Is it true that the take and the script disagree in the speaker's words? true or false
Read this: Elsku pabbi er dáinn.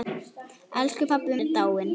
false